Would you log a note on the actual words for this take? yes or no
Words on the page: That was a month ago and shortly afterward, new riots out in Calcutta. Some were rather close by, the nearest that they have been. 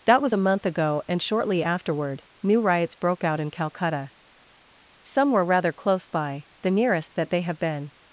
yes